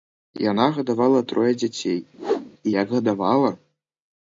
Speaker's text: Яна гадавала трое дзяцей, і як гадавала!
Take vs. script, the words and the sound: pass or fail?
fail